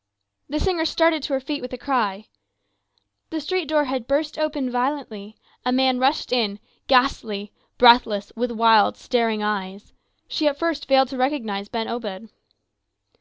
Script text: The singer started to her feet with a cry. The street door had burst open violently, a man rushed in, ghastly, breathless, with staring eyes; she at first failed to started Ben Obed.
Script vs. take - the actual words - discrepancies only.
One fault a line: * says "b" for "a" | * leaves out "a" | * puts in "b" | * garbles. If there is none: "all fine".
* puts in "wild"
* says "recognize" for "started"